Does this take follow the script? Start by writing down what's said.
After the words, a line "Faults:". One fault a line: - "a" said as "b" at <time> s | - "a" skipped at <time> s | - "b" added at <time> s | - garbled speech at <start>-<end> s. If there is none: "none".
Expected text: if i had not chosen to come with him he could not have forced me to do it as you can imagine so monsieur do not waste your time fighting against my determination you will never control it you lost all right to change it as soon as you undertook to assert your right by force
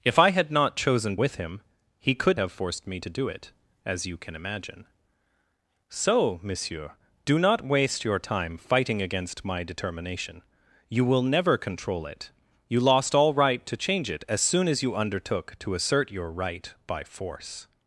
if i had not chosen with him he could have forced me to do it as you can imagine so monsieur do not waste your time fighting against my determination you will never control it you lost all right to change it as soon as you undertook to assert your right by force
Faults:
- "to come" skipped at 1.1 s
- "not" skipped at 2.4 s